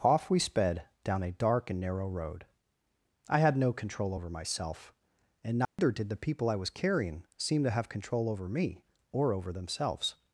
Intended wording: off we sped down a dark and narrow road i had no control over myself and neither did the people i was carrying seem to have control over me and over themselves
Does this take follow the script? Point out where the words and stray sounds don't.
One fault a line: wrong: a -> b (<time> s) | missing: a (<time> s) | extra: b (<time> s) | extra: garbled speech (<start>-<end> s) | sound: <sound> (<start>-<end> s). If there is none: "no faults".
sound: dropout (5.7-5.8 s)
wrong: and -> or (9.1 s)